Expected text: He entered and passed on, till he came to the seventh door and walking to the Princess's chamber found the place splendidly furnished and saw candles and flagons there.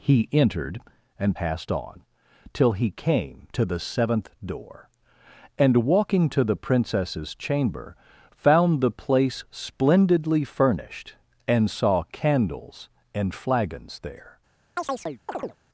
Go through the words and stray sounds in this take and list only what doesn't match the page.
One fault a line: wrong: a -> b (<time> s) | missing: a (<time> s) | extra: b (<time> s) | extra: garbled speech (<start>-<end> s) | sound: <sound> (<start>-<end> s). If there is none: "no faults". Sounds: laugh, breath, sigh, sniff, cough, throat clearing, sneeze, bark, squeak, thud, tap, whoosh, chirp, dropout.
sound: chirp (14.8-15.6 s)